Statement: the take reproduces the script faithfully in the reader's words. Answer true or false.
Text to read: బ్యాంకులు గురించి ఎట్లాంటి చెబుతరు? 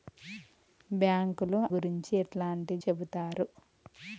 true